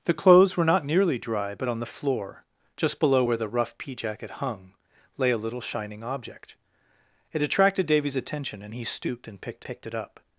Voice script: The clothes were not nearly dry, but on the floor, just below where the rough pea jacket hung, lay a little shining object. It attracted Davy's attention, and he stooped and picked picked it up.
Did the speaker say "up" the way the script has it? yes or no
yes